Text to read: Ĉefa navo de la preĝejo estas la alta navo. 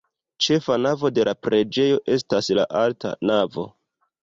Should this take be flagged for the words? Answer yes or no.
no